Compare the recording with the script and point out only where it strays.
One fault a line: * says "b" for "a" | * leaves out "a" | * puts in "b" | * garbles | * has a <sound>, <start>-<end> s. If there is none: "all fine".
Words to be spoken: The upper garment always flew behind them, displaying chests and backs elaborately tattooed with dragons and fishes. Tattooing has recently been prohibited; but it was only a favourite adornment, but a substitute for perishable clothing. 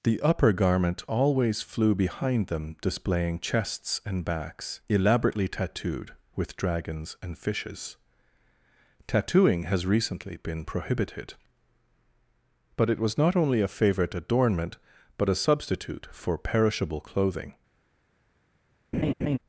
* puts in "not"
* has a laugh, 18.9-19.4 s